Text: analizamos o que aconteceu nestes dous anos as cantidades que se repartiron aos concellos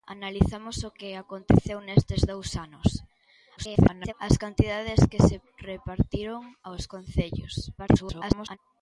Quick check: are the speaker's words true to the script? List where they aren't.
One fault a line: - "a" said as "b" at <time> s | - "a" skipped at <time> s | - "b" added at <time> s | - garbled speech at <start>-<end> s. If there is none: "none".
- garbled speech at 3.6-4.1 s
- garbled speech at 7.8-8.6 s